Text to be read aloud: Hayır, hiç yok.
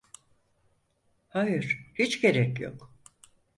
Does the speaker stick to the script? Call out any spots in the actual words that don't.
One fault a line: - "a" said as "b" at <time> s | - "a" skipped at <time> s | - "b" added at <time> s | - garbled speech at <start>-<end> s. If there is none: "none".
- "gerek" added at 2.2 s